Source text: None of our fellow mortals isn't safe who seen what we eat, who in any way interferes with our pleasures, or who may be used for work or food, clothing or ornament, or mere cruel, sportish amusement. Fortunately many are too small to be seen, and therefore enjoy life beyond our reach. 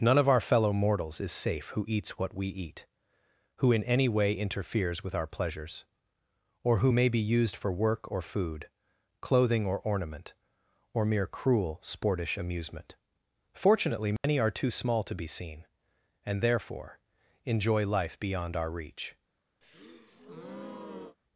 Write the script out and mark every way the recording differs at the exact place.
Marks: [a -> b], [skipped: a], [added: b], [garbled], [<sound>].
None of our fellow mortals [isn't -> is] safe who [seen -> eats] what we eat, who in any way interferes with our pleasures, or who may be used for work or food, clothing or ornament, or mere cruel, sportish amusement. Fortunately many [dropout] are too small to be seen, and therefore enjoy life beyond our reach. [breath]